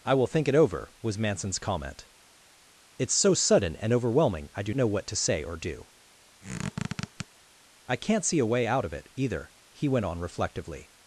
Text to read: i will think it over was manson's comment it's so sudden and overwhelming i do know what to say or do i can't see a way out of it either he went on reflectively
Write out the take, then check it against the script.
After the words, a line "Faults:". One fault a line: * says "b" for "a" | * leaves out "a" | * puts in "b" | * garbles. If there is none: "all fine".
i will think it over was manson's comment it's so sudden and overwhelming i do know what to say or do i can't see a way out of it either he went on reflectively
Faults:
all fine